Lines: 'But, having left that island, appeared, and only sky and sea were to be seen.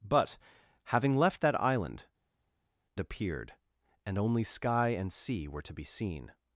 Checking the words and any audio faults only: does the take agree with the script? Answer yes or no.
yes